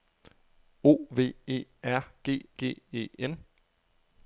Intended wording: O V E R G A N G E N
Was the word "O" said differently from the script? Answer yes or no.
no